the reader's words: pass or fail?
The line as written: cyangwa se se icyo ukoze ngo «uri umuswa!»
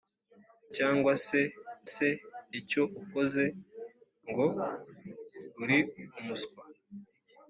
pass